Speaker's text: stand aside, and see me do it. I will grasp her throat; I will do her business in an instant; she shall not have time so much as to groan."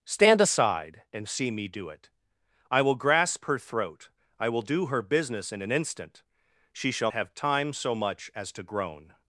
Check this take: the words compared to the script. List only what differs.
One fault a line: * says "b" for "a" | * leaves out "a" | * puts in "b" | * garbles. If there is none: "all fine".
* leaves out "not"